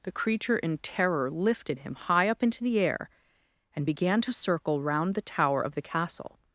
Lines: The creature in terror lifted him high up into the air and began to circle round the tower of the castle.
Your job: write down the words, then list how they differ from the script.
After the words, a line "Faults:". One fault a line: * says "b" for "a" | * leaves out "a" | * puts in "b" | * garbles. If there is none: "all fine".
The creature in terror lifted him high up into the air and began to circle round the tower of the castle.
Faults:
all fine